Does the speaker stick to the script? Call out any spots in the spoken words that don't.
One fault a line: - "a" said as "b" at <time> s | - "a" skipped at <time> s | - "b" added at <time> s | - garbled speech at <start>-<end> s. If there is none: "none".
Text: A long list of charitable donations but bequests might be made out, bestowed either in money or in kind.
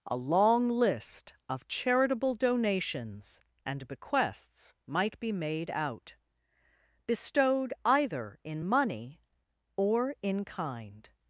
- "but" said as "and" at 3.6 s